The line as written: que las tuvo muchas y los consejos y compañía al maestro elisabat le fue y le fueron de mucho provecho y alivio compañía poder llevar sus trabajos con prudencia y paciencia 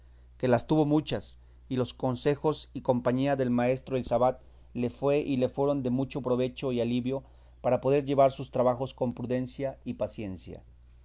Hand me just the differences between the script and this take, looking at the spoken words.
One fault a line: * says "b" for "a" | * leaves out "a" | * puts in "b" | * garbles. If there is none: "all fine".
* says "del" for "al"
* says "para" for "compañía"